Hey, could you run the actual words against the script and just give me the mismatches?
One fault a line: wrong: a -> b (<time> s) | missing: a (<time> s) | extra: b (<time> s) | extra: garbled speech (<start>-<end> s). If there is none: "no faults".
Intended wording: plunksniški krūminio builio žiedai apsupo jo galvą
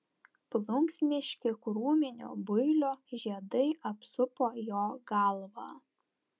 no faults